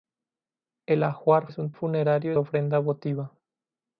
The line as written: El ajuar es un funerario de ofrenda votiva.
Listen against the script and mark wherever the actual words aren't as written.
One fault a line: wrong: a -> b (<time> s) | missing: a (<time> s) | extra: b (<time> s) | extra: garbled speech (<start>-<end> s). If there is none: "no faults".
no faults